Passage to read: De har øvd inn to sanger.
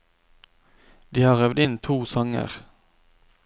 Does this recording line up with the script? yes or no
yes